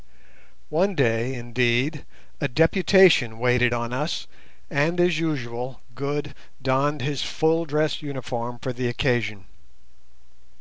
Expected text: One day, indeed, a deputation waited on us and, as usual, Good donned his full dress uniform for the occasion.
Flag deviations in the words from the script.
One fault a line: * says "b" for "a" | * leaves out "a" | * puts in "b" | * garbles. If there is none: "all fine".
all fine